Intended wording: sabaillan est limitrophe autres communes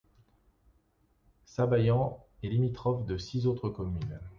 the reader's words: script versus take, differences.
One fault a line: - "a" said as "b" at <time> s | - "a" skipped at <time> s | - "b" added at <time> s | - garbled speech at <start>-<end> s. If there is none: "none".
- "de six" added at 3.0 s